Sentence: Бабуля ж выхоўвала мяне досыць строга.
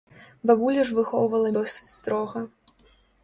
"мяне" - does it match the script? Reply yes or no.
no